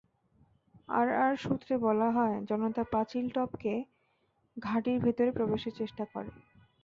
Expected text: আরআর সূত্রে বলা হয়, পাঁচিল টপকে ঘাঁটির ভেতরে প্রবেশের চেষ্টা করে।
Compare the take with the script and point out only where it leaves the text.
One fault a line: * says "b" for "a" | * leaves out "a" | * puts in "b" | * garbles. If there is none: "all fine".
* puts in "জনতা"